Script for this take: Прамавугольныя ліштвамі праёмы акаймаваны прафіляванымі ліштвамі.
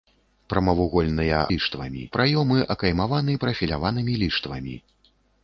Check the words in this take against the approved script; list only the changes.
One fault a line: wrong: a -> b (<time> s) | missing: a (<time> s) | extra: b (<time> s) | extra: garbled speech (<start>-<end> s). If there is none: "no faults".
no faults